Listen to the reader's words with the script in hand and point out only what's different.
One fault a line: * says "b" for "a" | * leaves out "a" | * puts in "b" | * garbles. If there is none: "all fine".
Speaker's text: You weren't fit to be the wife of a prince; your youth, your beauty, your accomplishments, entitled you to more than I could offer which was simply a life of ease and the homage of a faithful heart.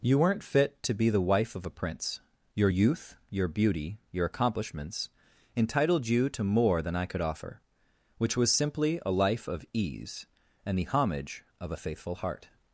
all fine